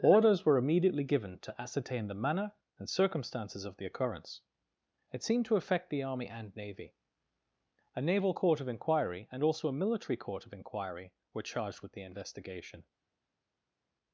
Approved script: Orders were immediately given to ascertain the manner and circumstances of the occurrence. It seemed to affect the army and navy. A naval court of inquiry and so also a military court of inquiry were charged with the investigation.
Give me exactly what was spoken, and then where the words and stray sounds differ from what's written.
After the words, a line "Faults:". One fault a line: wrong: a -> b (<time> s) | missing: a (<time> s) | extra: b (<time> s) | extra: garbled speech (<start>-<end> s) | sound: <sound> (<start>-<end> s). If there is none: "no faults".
Orders were immediately given to ascertain the manner and circumstances of the occurrence. It seemed to affect the army and navy. A naval court of inquiry and also a military court of inquiry were charged with the investigation.
Faults:
missing: so (9.4 s)